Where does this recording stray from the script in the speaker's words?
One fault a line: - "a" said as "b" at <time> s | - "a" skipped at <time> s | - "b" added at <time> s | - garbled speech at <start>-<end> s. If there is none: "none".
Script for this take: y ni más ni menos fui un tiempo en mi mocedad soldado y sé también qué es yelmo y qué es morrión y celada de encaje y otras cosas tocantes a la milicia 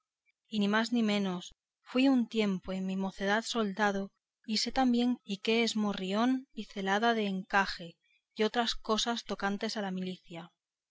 - "qué es yelmo" skipped at 5.2 s